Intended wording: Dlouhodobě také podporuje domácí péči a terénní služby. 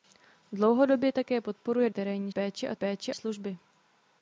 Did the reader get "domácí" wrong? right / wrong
wrong